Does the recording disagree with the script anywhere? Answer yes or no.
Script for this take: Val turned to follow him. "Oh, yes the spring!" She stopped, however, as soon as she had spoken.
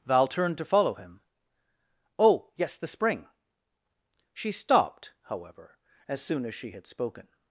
no